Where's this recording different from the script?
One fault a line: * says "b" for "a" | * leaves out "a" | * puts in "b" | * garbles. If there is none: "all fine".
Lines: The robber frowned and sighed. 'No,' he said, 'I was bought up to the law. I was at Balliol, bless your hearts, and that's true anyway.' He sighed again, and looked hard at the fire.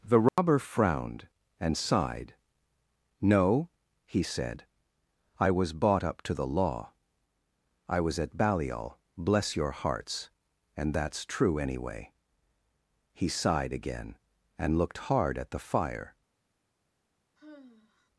all fine